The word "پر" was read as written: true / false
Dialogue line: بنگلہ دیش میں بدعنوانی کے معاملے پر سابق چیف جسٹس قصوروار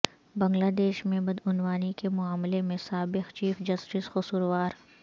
false